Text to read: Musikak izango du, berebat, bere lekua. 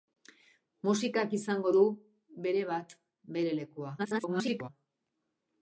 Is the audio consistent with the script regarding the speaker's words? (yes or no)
no